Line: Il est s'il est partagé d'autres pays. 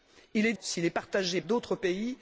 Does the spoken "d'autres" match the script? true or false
true